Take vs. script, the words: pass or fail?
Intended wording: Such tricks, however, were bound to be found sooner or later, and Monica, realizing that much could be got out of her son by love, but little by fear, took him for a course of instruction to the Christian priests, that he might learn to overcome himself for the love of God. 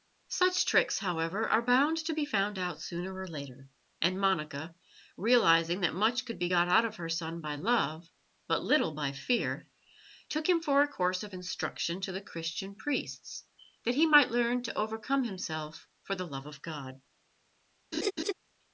fail